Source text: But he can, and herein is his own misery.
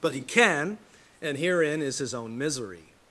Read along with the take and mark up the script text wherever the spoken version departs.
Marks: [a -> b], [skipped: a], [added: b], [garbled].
But he can, and herein is his own misery.